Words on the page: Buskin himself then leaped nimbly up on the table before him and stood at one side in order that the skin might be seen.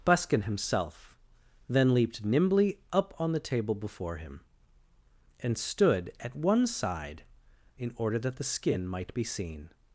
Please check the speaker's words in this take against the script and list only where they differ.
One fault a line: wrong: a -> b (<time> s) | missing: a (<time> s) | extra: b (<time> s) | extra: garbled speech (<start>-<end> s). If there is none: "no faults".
no faults